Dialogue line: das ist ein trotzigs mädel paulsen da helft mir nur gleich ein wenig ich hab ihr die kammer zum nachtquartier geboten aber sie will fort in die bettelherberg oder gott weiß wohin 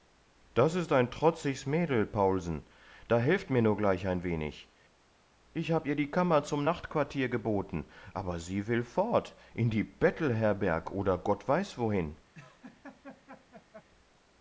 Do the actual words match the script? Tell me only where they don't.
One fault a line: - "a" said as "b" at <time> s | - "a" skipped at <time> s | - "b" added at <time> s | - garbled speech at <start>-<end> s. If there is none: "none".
none